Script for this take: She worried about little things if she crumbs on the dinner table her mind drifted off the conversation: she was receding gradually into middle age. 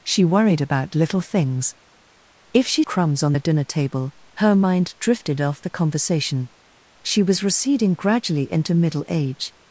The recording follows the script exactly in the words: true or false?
true